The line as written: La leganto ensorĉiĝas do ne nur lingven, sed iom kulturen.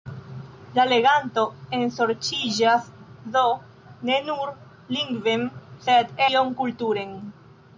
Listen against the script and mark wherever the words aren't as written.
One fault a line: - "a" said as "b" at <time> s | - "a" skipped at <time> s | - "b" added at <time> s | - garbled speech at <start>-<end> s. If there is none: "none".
none